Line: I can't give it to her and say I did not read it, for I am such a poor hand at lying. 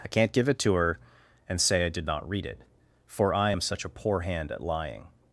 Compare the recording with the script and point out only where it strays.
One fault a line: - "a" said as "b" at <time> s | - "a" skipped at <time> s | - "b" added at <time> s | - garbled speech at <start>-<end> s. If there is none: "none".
none